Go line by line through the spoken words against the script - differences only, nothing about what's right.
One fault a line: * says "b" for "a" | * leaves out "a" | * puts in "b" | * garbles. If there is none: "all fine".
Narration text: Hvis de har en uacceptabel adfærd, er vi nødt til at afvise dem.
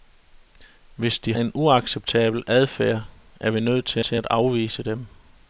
* leaves out "har"
* puts in "til"